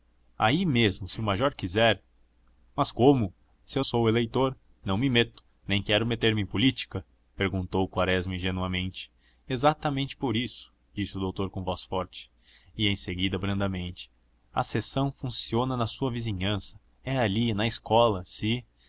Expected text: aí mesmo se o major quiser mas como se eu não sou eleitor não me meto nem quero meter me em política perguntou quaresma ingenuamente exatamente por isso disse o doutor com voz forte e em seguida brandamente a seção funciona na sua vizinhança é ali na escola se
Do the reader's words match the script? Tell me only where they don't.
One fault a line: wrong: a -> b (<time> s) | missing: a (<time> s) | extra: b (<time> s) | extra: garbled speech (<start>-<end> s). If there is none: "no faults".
missing: não (3.9 s)